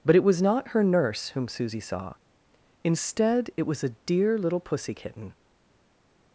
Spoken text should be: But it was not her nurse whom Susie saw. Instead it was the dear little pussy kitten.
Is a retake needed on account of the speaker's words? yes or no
yes